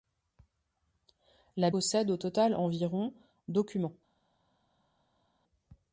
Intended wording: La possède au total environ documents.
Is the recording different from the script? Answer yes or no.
no